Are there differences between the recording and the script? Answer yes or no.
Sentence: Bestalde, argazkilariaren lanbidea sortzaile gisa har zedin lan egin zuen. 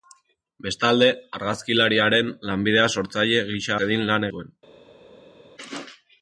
yes